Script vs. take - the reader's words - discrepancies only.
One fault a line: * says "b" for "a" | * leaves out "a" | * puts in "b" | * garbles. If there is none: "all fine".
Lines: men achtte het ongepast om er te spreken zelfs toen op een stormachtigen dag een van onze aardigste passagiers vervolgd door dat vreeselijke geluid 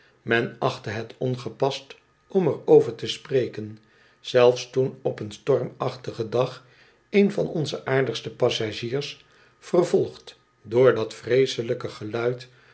* puts in "over"